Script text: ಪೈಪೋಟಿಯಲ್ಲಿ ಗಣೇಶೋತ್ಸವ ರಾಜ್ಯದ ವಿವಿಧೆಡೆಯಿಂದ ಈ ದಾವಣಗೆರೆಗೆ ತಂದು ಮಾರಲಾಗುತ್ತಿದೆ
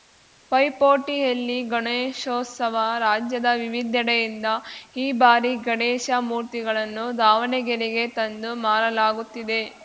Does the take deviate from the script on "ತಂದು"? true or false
false